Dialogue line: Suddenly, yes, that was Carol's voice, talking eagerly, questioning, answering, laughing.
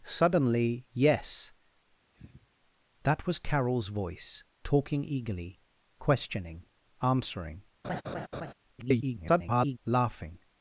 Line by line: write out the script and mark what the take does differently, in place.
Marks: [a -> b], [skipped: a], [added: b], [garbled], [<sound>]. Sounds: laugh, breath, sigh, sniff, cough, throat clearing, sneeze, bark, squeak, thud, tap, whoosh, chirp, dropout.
Suddenly, yes, [sniff] that was Carol's voice, talking eagerly, questioning, answering, [laugh] [garbled] laughing.